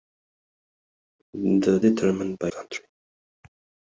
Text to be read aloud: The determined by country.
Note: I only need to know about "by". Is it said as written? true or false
true